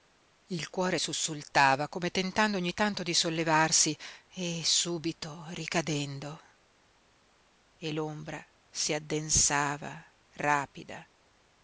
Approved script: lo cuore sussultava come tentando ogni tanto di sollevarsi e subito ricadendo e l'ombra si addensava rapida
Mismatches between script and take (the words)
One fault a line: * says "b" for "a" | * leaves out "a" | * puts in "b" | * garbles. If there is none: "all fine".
* says "il" for "lo"